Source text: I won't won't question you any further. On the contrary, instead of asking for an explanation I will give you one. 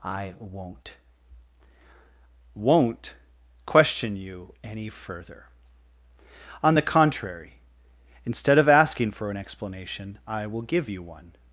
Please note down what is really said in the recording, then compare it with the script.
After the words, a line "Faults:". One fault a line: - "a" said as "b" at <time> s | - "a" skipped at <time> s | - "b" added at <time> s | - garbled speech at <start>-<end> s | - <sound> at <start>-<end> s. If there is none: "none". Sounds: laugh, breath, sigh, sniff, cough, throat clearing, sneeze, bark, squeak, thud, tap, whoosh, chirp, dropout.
I won't won't question you any further. On the contrary, instead of asking for an explanation I will give you one.
Faults:
none